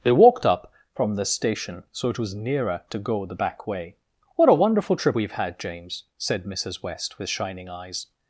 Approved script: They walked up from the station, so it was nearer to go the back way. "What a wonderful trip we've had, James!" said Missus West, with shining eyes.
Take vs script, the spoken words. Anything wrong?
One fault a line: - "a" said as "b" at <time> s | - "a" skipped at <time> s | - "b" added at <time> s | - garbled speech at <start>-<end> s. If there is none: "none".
none